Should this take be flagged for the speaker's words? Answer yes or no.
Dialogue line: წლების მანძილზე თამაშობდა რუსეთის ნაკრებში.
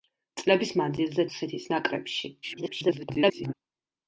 yes